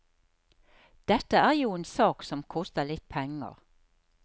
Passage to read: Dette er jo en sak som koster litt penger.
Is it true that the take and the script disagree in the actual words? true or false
false